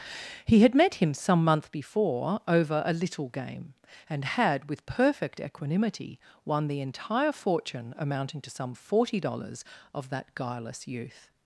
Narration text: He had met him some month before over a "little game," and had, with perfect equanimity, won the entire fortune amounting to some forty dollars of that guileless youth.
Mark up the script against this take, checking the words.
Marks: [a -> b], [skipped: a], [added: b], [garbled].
He had met him some month before over a "little game," and had, with perfect equanimity, won the entire fortune amounting to some forty dollars of that guileless youth.